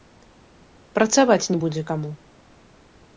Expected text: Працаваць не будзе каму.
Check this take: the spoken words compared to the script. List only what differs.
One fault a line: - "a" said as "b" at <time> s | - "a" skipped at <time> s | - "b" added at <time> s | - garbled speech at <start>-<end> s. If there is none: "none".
none